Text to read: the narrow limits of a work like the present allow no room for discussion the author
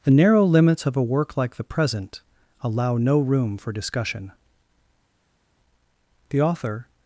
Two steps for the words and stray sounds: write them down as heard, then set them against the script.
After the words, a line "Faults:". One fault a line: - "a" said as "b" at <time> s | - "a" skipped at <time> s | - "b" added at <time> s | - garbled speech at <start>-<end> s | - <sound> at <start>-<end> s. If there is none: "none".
the narrow limits of a work like the present allow no room for discussion the author
Faults:
none